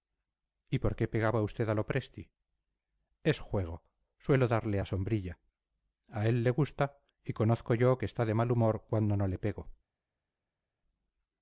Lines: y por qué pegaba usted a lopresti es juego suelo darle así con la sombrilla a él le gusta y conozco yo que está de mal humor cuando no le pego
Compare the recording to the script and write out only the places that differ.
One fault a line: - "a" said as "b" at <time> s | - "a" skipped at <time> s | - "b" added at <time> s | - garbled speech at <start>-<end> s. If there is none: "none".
- "así con" skipped at 4.8 s